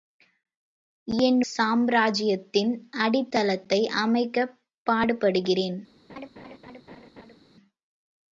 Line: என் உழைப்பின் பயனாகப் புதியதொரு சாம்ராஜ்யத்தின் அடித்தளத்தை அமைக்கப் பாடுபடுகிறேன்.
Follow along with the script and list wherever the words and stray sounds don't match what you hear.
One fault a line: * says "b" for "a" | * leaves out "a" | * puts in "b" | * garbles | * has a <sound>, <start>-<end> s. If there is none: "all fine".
* leaves out "உழைப்பின் பயனாகப் புதியதொரு"
* has a laugh, 6.1-7.4 s